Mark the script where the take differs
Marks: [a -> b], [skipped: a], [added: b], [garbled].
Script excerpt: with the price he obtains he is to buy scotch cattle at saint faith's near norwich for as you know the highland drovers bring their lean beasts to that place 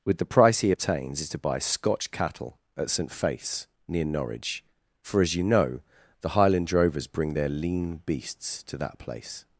with the price he obtains [skipped: he] is to buy scotch cattle at saint faith's near norwich for as you know the highland drovers bring their lean beasts to that place